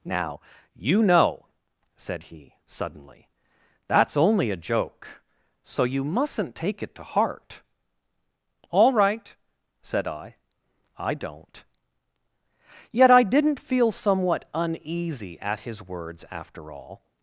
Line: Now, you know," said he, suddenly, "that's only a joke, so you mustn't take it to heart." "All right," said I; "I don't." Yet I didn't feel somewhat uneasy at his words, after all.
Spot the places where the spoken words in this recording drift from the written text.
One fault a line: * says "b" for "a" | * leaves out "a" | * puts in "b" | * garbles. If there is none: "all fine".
all fine